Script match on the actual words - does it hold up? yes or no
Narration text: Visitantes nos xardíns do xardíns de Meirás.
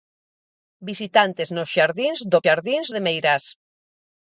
yes